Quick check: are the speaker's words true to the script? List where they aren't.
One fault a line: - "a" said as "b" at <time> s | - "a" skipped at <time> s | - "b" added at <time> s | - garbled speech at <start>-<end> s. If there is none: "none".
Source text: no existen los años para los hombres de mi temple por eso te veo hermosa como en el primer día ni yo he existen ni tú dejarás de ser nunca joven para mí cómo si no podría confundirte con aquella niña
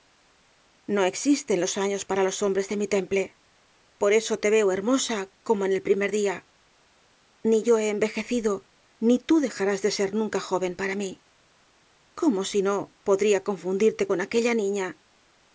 - "existen" said as "envejecido" at 7.9 s